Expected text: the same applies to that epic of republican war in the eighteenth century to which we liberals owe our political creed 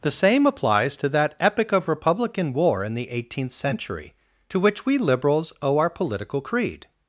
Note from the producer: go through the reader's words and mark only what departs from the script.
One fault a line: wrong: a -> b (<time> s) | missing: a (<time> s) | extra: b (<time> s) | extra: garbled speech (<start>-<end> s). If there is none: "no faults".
no faults